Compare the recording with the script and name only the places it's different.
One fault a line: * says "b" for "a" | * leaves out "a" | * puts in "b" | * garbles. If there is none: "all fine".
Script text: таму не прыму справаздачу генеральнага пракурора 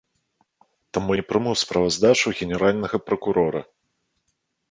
all fine